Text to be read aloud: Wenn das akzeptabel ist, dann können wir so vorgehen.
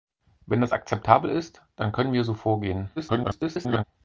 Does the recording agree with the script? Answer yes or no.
no